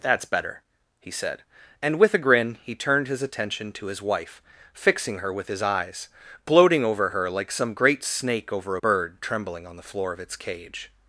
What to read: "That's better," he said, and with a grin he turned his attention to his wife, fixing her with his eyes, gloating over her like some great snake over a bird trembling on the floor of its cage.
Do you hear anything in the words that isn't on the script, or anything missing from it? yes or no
yes